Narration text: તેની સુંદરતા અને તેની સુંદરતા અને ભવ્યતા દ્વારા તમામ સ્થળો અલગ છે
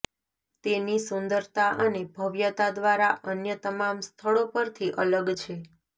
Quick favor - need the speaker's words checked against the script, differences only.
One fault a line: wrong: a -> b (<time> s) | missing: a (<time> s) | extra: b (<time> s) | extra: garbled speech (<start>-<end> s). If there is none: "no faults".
missing: તેની સુંદરતા અને (2.0 s)
extra: અન્ય (3.3 s)
extra: પરથી (4.5 s)